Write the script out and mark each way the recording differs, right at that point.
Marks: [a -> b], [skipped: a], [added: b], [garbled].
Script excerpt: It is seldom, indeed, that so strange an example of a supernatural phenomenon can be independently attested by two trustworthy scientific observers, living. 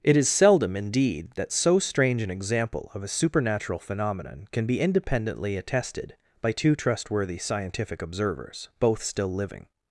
It is seldom, indeed, that so strange an example of a supernatural phenomenon can be independently attested by two trustworthy scientific observers, [added: both still] living.